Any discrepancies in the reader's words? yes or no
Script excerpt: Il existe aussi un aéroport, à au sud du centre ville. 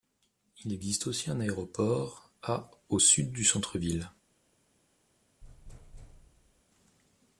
no